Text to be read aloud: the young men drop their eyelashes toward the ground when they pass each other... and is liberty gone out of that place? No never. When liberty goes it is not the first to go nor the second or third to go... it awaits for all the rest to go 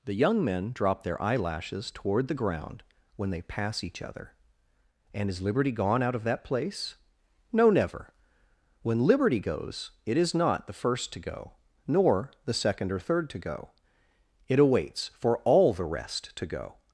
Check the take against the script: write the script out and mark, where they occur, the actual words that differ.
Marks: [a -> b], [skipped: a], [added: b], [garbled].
the young men drop their eyelashes toward the ground when they pass each other... and is liberty gone out of that place? No never. When liberty goes it is not the first to go nor the second or third to go... it awaits for all the rest to go